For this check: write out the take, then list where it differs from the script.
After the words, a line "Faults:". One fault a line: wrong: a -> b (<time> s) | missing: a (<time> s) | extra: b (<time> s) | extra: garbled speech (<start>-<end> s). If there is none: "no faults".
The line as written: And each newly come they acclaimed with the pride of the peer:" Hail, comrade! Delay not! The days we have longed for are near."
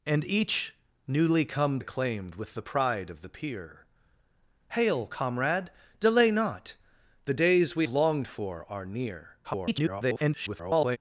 And each newly come acclaimed with the pride of the peer:" Hail, comrade! Delay not! The days we longed for are near." [garbled]
Faults:
missing: they (1.8 s)
missing: have (7.9 s)
extra: garbled speech (9.4-11.0 s)